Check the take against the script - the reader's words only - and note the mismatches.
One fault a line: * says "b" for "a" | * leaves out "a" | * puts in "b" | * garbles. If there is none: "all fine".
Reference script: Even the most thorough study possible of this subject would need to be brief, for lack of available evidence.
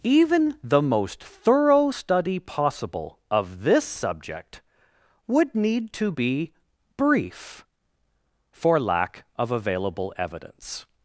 all fine